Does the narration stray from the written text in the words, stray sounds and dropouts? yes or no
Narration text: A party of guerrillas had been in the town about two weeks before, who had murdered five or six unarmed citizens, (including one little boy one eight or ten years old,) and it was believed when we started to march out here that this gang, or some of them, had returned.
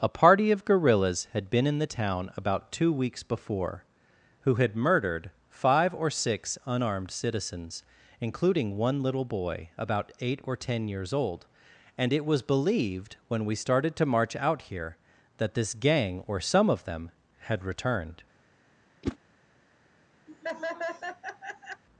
yes